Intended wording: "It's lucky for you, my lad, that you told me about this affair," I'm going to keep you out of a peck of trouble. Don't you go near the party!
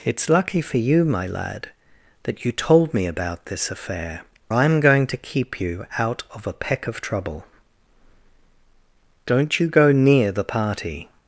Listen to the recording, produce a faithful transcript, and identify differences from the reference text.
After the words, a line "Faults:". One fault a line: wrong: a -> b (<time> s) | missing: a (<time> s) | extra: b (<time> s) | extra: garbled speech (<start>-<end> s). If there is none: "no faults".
"It's lucky for you, my lad, that you told me about this affair," I'm going to keep you out of a peck of trouble. Don't you go near the party!
Faults:
no faults